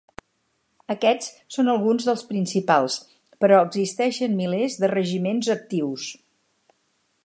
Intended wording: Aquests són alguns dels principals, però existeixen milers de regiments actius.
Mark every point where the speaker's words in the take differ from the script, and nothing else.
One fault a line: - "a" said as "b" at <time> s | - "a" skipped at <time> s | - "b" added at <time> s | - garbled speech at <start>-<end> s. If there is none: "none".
none